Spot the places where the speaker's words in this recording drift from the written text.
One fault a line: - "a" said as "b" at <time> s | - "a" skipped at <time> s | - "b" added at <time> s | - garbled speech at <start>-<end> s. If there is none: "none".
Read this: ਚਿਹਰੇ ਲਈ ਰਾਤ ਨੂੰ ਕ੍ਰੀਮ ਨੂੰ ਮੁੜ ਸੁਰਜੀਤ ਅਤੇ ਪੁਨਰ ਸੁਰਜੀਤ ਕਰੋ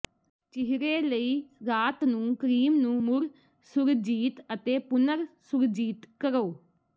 none